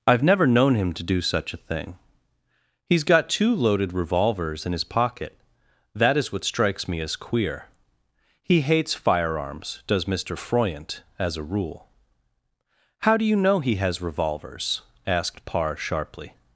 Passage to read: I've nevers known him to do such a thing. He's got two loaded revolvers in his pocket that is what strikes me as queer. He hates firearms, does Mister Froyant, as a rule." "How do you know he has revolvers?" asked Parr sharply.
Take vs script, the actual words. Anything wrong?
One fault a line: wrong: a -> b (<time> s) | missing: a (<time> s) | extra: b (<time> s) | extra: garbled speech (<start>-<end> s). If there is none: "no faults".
wrong: nevers -> never (0.2 s)